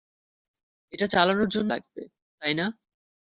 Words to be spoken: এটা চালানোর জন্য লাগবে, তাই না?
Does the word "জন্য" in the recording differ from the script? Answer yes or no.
no